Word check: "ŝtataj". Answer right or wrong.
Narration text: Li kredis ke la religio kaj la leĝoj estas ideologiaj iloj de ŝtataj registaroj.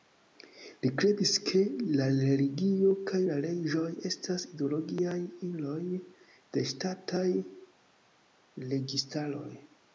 right